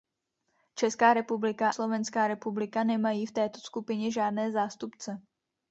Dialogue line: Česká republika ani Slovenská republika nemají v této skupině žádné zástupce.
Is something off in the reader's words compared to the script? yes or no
yes